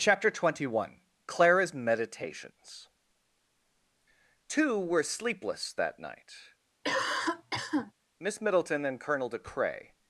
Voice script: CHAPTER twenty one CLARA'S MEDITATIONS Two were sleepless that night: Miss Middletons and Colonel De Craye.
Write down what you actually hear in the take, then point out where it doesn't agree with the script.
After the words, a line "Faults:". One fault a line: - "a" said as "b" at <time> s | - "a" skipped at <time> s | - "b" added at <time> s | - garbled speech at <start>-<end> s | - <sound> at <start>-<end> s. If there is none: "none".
CHAPTER twenty one CLARA'S MEDITATIONS Two were sleepless that night: Miss Middleton and Colonel De Craye.
Faults:
- cough at 6.8-7.9 s
- "Middletons" said as "Middleton" at 8.4 s